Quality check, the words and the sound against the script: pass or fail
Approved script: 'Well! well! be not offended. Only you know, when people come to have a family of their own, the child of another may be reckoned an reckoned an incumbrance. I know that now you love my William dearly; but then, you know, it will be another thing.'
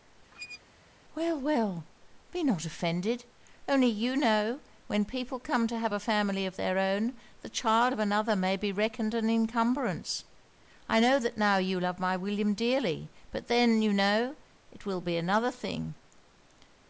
fail